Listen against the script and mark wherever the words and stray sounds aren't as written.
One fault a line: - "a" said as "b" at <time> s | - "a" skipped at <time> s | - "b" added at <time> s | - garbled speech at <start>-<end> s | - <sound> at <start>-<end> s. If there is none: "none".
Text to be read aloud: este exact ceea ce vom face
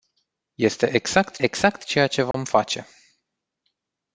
- "exact" added at 1.4 s
- dropout at 2.3-2.3 s